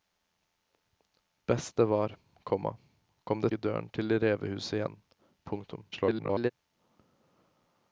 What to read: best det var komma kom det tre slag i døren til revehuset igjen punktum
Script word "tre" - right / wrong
wrong